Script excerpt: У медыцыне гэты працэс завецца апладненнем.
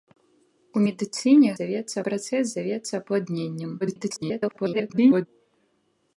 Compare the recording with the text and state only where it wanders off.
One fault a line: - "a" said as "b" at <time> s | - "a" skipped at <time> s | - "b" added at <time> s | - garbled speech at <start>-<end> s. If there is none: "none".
- "гэты" said as "завецца" at 1.6 s
- garbled speech at 3.8-5.3 s